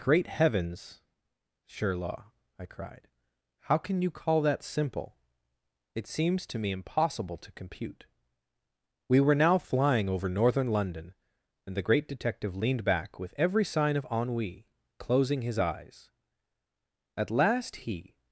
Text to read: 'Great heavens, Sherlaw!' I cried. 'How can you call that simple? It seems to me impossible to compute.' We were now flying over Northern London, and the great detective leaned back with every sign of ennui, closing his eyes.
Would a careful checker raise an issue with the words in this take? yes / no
yes